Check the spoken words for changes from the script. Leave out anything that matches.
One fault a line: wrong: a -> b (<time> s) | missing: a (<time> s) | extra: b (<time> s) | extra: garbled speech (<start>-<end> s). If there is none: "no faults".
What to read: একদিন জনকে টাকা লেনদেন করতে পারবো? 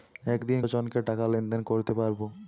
no faults